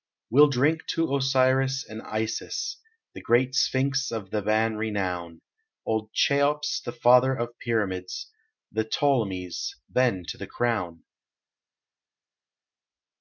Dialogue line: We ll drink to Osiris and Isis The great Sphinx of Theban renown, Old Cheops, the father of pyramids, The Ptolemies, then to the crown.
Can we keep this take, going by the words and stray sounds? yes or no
yes